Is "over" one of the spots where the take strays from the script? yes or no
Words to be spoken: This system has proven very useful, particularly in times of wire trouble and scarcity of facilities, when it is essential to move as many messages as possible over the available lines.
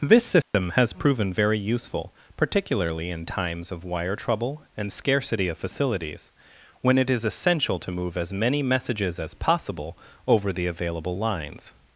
no